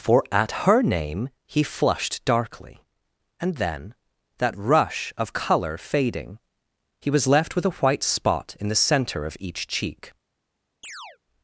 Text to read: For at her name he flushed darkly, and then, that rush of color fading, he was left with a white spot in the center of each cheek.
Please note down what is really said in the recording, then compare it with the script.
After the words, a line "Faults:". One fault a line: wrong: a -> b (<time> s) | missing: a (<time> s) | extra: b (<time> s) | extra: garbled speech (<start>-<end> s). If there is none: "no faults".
For at her name he flushed darkly, and then, that rush of color fading, he was left with a white spot in the center of each cheek.
Faults:
no faults